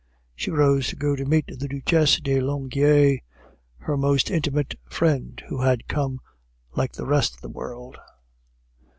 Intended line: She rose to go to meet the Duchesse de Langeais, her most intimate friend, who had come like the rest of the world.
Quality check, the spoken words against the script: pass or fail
pass